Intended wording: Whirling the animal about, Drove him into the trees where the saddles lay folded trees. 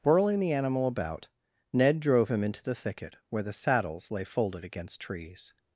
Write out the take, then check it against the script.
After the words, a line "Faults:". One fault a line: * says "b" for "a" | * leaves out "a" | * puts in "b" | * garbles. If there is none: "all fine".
Whirling the animal about, Ned drove him into the thicket where the saddles lay folded against trees.
Faults:
* puts in "Ned"
* says "thicket" for "trees"
* puts in "against"